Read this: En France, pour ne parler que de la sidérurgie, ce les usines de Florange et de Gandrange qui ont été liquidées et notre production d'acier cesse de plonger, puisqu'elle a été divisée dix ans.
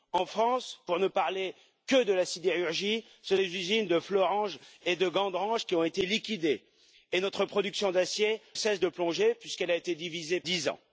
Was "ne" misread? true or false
false